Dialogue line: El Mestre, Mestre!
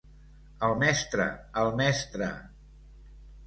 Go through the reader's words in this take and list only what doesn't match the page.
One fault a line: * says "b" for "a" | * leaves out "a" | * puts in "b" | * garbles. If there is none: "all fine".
* puts in "el"